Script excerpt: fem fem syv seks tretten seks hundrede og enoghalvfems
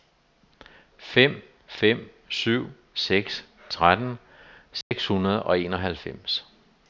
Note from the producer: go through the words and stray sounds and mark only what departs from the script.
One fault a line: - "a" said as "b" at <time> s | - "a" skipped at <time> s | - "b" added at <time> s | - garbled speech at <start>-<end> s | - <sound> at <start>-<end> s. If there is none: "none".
- dropout at 4.8-4.9 s